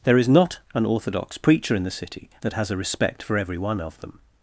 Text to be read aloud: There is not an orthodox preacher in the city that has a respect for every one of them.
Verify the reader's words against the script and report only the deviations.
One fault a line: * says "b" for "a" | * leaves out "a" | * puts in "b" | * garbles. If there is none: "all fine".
all fine